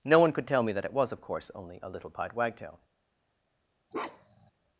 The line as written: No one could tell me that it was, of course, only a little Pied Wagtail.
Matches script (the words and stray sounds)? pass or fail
fail